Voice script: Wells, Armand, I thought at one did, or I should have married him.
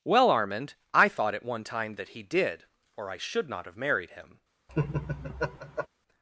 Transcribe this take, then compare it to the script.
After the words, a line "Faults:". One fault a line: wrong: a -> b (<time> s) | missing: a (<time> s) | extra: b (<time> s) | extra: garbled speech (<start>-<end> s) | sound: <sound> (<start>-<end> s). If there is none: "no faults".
Well, Armand, I thought at one time that he did, or I should not have married him.
Faults:
wrong: Wells -> Well (0.0 s)
extra: time that he (1.6 s)
extra: not (3.5 s)
sound: laugh (4.7-5.9 s)